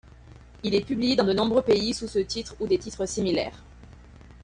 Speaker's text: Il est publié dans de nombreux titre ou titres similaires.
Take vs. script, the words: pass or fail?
fail